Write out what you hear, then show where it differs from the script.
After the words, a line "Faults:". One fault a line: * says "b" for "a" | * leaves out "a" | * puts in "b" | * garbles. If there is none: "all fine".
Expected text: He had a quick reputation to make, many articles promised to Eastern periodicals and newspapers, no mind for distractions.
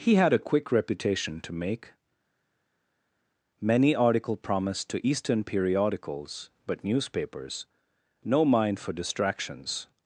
He had a quick reputation to make, many article promised to Eastern periodicals but newspapers, no mind for distractions.
Faults:
* says "article" for "articles"
* says "but" for "and"